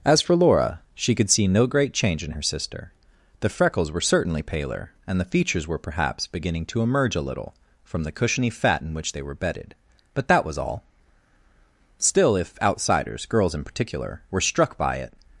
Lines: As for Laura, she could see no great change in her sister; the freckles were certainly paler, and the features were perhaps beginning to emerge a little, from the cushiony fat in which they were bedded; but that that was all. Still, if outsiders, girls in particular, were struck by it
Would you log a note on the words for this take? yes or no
yes